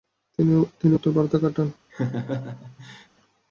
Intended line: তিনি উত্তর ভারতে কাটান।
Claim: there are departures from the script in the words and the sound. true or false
true